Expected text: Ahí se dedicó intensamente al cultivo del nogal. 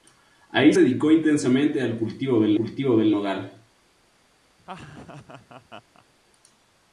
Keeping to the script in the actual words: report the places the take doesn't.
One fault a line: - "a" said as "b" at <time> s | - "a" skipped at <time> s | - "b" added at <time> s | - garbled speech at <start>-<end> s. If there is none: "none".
- "se" skipped at 0.7 s
- "cultivo del" added at 2.6 s